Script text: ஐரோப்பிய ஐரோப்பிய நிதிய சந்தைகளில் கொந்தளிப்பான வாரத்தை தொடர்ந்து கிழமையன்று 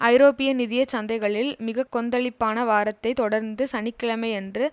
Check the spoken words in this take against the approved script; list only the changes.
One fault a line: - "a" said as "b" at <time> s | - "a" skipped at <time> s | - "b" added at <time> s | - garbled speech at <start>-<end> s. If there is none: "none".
- "ஐரோப்பிய" skipped at 0.5 s
- "மிக" added at 1.6 s
- "சனி" added at 3.7 s